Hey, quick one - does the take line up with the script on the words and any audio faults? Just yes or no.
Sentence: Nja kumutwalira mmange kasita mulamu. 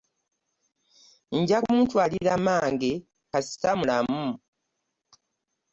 yes